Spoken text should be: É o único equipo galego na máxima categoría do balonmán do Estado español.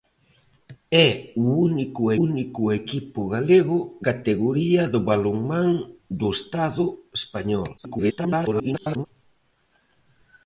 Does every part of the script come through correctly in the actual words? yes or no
no